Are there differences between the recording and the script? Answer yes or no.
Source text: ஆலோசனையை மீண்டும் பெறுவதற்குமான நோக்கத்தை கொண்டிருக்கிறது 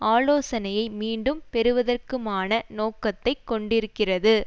no